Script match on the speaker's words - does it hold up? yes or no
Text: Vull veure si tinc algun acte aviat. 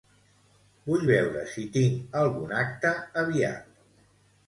yes